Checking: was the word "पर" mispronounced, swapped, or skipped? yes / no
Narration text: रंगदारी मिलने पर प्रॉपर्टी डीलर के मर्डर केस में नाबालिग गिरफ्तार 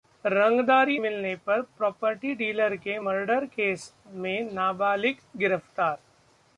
no